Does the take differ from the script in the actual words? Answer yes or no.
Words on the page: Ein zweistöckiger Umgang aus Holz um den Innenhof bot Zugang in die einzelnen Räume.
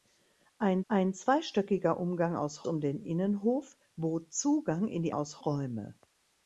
yes